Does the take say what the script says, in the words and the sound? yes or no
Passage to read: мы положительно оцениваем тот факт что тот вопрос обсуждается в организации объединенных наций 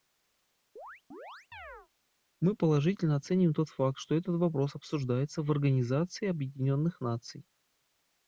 no